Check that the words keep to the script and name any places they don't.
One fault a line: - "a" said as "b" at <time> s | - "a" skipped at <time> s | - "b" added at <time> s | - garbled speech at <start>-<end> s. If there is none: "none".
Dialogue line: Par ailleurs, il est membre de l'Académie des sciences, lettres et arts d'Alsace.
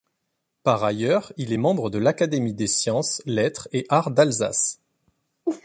none